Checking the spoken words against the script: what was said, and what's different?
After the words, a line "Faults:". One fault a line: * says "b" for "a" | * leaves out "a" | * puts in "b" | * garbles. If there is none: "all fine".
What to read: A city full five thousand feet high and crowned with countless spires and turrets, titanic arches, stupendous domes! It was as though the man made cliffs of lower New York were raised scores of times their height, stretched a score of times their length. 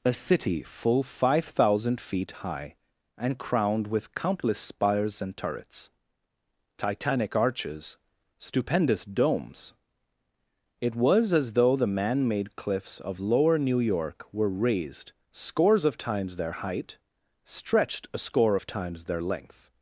A city full five thousand feet high and crowned with countless spires and turrets, titanic arches, stupendous domes! It was as though the man made cliffs of lower New York were raised scores of times their height, stretched a score of times their length.
Faults:
all fine